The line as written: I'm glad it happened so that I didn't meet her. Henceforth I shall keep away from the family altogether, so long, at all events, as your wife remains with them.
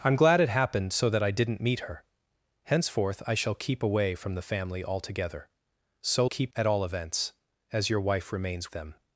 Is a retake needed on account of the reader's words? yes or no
yes